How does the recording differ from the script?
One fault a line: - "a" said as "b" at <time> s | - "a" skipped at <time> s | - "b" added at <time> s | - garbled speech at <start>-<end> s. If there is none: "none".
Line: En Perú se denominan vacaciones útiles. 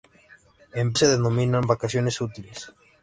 - "Perú" skipped at 0.9 s